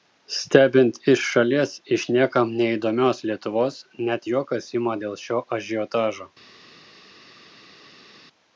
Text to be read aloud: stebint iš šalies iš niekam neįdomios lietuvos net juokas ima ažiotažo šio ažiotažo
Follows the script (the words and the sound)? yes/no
no